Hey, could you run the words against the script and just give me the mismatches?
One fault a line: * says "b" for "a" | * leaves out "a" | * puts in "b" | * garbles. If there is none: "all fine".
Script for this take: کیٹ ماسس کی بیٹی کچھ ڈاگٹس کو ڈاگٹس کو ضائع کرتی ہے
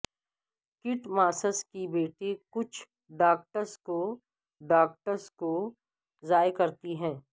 all fine